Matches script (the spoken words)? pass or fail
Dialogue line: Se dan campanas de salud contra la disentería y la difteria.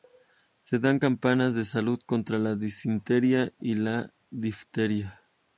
pass